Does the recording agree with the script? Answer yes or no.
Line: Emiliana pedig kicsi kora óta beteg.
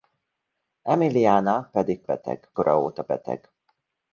no